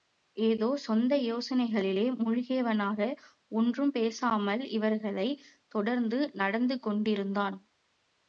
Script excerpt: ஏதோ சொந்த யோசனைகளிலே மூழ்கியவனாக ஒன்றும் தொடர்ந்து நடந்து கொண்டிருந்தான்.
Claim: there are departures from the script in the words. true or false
true